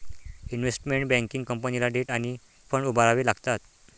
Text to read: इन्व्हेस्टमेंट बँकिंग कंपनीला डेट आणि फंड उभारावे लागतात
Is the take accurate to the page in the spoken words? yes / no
yes